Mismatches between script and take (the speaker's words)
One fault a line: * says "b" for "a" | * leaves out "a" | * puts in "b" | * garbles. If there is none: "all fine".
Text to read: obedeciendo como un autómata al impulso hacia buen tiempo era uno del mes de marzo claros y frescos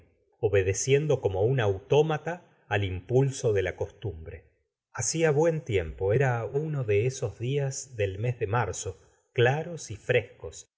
* puts in "de la costumbre"
* puts in "de esos días"